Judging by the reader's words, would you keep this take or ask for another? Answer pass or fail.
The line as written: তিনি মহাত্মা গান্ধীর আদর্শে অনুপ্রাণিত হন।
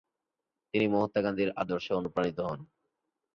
pass